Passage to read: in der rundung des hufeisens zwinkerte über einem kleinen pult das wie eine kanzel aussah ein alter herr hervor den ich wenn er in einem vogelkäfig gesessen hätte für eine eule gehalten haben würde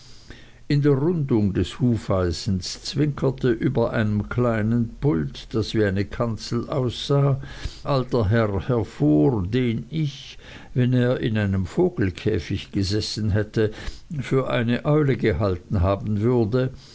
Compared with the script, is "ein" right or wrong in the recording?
wrong